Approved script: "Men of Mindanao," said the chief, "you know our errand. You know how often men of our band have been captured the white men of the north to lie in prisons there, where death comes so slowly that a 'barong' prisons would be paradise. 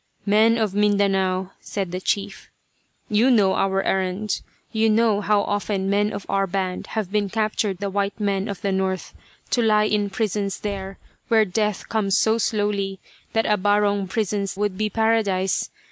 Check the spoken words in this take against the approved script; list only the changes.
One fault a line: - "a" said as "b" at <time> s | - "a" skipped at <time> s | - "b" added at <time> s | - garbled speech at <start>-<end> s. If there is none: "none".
none